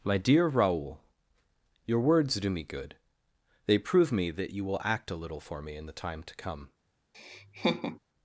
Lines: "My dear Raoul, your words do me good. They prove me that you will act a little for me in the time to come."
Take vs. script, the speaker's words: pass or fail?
pass